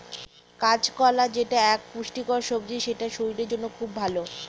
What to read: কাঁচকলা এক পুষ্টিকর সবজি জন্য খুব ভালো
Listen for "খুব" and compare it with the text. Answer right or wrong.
right